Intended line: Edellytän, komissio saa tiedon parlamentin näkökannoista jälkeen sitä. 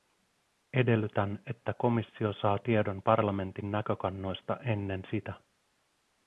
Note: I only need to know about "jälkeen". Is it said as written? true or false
false